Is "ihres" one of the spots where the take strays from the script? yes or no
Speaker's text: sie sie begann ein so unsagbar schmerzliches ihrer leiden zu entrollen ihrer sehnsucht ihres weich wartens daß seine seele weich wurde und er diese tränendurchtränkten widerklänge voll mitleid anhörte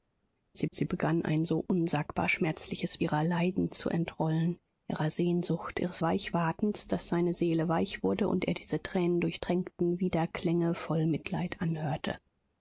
no